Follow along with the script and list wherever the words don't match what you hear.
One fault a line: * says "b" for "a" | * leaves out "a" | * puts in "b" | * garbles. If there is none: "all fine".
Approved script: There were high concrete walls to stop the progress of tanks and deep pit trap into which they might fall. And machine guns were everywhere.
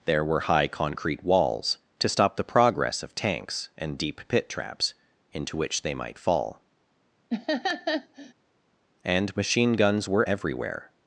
* says "traps" for "trap"